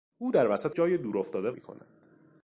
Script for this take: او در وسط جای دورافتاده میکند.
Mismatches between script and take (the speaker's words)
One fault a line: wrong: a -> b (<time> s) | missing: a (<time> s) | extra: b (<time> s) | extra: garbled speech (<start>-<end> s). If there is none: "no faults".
no faults